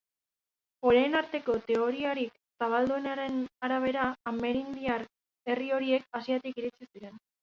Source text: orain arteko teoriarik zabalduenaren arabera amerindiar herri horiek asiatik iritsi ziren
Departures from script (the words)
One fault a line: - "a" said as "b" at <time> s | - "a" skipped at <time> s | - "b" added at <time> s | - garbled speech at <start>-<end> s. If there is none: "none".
none